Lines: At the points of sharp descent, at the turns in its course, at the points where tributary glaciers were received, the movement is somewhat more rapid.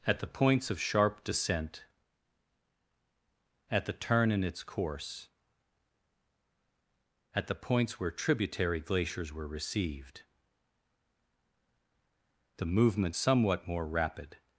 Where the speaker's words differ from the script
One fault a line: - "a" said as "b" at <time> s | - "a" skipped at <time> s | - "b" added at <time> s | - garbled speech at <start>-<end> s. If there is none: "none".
- "turns" said as "turn" at 3.9 s
- "is" skipped at 13.2 s